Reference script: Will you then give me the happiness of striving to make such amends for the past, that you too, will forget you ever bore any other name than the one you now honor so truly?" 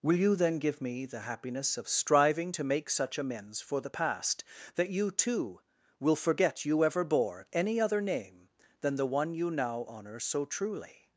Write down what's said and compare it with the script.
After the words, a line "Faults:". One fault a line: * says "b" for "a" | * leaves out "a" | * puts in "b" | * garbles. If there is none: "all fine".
Will you then give me the happiness of striving to make such amends for the past, that you too, will forget you ever bore any other name than the one you now honor so truly?"
Faults:
all fine